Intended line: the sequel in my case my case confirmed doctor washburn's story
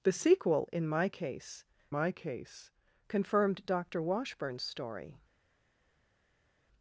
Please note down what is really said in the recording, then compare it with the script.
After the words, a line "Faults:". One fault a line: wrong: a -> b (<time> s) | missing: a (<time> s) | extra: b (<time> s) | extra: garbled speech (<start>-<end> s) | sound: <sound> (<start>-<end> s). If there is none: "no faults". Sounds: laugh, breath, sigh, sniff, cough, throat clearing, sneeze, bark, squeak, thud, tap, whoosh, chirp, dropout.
the sequel in my case my case confirmed doctor washburn's story
Faults:
no faults